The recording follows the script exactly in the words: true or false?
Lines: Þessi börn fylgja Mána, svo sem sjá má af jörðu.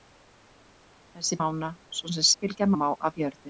false